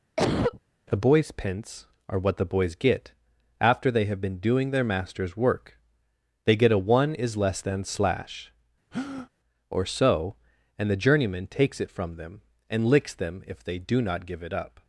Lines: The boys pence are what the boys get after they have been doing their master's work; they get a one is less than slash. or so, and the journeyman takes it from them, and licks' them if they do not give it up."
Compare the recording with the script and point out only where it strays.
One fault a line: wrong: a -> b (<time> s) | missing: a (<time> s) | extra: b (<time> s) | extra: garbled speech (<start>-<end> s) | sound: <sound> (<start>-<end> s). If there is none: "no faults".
sound: cough (0.2-0.6 s)
sound: breath (8.9-9.3 s)